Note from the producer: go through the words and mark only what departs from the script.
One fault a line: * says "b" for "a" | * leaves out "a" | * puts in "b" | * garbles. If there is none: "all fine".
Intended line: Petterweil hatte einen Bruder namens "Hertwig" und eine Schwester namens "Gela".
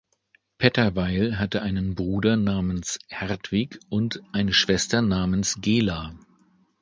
all fine